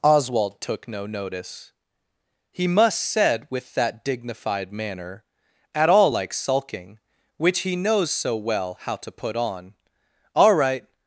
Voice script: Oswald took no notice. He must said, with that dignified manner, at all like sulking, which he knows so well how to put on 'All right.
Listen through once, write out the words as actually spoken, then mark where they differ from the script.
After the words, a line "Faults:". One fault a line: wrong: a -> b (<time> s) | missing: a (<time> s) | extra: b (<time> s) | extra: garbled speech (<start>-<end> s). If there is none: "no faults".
Oswald took no notice. He must said, with that dignified manner, at all like sulking, which he knows so well how to put on 'All right.
Faults:
no faults